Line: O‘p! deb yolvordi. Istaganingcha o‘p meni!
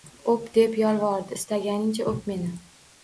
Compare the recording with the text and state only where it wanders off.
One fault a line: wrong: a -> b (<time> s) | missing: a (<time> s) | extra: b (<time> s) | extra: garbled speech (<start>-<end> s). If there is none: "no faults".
no faults